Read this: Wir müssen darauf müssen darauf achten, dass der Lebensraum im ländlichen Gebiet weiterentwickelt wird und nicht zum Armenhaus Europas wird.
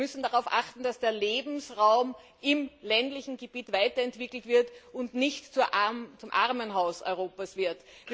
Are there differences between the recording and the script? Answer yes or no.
yes